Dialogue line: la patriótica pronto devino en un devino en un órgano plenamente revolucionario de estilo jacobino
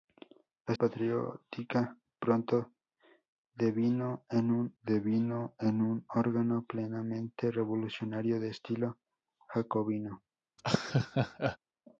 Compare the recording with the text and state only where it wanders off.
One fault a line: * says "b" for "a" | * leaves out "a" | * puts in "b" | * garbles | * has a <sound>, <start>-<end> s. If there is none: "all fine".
* has a laugh, 10.6-11.6 s